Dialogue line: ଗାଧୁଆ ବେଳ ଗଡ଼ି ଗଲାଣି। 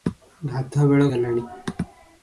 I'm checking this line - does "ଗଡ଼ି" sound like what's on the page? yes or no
no